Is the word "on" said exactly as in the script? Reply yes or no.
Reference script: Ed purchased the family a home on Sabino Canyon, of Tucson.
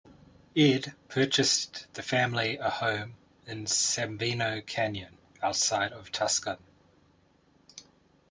no